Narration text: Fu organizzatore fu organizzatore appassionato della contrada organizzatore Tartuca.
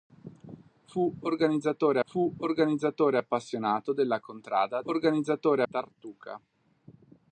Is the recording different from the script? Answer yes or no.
no